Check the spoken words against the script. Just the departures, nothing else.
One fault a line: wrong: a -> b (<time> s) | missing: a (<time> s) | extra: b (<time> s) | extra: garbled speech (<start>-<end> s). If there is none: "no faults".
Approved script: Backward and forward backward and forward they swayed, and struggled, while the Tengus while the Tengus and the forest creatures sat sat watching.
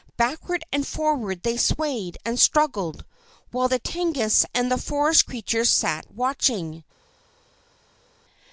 missing: backward and forward (1.4 s)
missing: while the Tengus (4.4 s)
missing: sat (6.1 s)